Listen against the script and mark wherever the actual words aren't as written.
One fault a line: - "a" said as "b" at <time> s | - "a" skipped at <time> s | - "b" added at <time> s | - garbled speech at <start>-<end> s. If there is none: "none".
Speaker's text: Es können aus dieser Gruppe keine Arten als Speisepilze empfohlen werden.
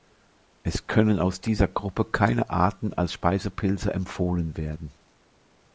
none